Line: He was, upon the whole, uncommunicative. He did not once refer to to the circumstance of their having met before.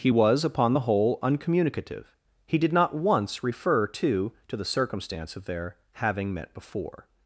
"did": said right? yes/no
yes